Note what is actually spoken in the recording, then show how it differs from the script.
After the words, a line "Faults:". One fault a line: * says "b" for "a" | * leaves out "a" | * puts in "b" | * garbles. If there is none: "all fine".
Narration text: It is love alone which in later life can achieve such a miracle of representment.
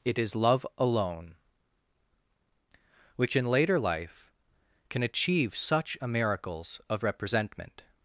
It is love alone which in later life can achieve such a miracles of representment.
Faults:
* says "miracles" for "miracle"